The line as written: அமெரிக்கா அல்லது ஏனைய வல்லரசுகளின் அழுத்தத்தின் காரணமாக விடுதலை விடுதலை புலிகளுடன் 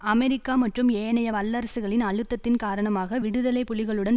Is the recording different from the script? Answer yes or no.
yes